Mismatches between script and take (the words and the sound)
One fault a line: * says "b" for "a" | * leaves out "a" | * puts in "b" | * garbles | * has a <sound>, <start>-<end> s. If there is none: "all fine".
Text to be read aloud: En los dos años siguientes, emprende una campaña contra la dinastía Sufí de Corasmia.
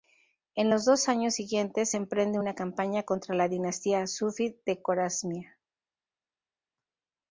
all fine